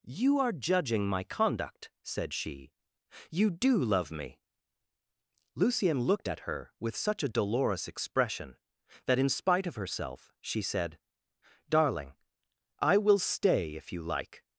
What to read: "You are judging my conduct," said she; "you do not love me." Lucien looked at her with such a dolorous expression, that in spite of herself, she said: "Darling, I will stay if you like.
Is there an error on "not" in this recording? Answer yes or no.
yes